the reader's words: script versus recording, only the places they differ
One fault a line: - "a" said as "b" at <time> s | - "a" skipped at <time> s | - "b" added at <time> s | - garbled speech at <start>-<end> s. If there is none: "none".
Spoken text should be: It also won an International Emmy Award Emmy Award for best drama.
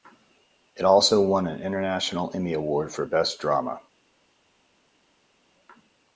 - "Emmy Award" skipped at 2.9 s